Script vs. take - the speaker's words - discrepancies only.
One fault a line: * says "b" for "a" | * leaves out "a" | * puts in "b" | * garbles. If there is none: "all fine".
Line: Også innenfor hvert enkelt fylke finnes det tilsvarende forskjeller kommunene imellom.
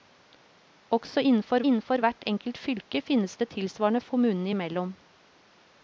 * puts in "innenfor"
* leaves out "forskjeller"